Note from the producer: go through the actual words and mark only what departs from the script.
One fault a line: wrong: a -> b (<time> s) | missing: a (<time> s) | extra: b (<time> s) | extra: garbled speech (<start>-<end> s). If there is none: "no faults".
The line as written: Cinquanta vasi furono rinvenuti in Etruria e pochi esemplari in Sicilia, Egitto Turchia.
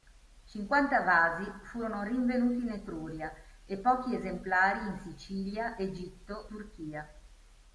no faults